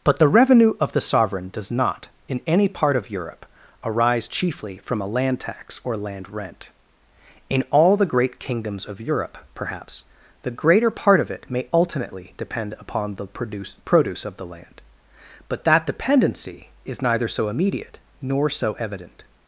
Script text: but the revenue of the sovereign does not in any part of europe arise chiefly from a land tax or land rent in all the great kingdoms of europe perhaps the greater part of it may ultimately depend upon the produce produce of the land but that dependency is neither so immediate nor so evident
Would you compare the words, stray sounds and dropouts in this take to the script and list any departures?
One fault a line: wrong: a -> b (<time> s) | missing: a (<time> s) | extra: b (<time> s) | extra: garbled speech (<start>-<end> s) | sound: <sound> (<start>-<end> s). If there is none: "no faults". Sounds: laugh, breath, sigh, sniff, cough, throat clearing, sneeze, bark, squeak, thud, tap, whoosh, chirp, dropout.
no faults